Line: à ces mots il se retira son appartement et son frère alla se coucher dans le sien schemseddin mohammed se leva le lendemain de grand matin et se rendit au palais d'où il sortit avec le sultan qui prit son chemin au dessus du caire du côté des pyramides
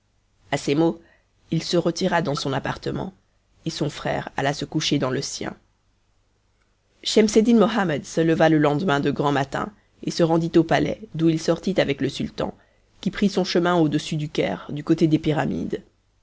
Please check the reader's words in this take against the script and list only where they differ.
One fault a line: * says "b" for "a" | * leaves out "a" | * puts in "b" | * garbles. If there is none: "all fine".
* puts in "dans"